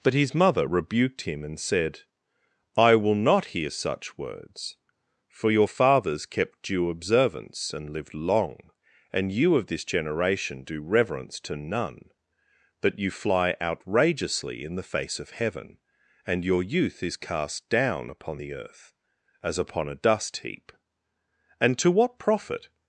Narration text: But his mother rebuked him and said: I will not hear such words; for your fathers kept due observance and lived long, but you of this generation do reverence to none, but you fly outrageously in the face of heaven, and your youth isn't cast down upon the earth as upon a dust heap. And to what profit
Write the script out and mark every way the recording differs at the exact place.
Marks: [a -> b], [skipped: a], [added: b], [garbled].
But his mother rebuked him and said: I will not hear such words; for your fathers kept due observance and lived long, [but -> and] you of this generation do reverence to none, but you fly outrageously in the face of heaven, and your youth [isn't -> is] cast down upon the earth as upon a dust heap. And to what profit